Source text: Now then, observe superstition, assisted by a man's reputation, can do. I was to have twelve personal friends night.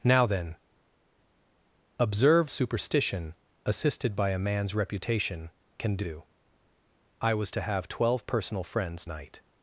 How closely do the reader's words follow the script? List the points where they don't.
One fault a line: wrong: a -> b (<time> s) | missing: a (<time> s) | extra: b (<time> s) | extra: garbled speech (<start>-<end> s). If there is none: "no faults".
no faults